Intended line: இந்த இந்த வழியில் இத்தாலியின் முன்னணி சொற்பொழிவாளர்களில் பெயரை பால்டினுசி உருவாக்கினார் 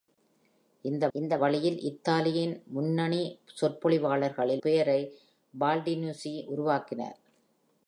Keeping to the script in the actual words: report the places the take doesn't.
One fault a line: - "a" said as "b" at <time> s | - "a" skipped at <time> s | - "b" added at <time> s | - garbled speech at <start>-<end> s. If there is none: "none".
none